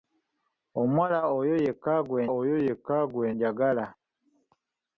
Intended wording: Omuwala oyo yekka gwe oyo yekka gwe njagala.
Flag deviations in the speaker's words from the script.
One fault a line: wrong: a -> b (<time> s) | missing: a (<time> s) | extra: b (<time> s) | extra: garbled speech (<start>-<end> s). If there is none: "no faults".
no faults